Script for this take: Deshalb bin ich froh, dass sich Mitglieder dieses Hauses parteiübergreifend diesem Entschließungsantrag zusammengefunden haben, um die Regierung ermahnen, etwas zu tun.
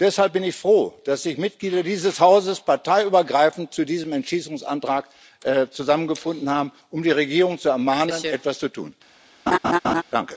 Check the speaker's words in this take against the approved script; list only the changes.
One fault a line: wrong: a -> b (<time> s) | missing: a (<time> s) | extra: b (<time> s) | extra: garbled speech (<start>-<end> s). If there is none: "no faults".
extra: zu (3.7 s)
extra: zu (7.6 s)